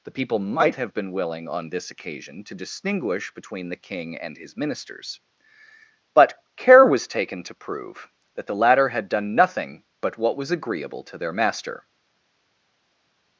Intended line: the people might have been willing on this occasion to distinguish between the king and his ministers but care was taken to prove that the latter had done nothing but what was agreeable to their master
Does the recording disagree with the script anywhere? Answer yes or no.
no